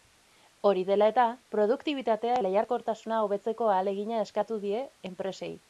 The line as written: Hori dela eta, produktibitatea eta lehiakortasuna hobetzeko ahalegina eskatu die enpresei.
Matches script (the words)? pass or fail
fail